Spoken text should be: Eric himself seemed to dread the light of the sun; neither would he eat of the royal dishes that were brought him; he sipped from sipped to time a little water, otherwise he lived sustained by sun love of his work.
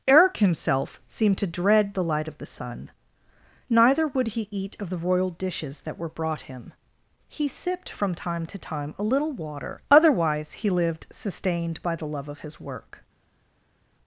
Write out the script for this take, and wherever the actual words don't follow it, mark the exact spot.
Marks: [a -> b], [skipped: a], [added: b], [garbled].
Eric himself seemed to dread the light of the sun; neither would he eat of the royal dishes that were brought him; he sipped from [sipped -> time] to time a little water, otherwise he lived sustained by [sun -> the] love of his work.